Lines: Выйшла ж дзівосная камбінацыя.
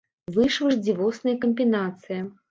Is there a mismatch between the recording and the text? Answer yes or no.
no